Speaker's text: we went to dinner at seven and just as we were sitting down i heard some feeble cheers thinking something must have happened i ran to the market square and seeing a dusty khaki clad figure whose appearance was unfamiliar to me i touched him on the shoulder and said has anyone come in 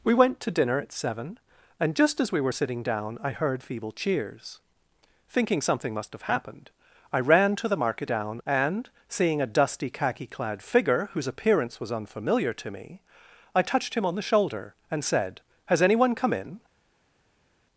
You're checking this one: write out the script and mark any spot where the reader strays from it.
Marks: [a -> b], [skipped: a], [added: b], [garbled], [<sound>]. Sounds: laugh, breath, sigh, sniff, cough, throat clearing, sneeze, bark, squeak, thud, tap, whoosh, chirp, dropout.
we went to dinner at seven and just as we were sitting down i heard [skipped: some] feeble cheers thinking something must have happened i ran to the market [square -> down] and seeing a dusty khaki clad figure whose appearance was unfamiliar to me i touched him on the shoulder and said has anyone come in